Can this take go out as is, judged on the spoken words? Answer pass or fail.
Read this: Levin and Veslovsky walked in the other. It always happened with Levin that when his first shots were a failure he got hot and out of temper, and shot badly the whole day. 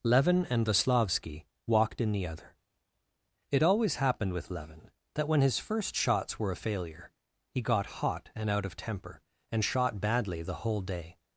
pass